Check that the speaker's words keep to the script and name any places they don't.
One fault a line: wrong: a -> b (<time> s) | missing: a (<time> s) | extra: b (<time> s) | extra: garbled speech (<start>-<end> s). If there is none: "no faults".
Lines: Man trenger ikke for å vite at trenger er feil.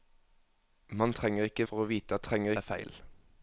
no faults